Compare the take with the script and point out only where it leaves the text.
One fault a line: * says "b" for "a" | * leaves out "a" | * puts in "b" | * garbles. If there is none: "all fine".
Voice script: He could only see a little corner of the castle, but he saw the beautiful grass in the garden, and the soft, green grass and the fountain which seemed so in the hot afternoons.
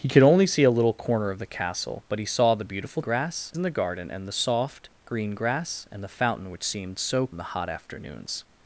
all fine